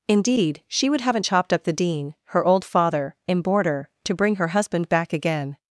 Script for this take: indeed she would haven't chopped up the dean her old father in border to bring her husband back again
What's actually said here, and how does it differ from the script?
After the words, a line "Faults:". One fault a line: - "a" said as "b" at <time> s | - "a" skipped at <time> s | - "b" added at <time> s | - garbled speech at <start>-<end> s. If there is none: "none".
indeed she would haven't chopped up the dean her old father in border to bring her husband back again
Faults:
none